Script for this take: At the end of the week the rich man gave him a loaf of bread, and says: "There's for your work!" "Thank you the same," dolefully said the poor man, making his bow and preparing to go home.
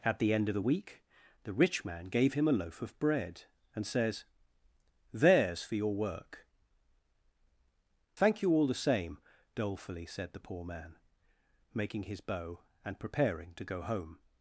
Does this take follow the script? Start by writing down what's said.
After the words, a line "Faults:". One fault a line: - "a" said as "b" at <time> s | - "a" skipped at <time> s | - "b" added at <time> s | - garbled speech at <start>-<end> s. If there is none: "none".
At the end of the week the rich man gave him a loaf of bread, and says: "There's for your work!" "Thank you all the same," dolefully said the poor man, making his bow and preparing to go home.
Faults:
- "all" added at 8.5 s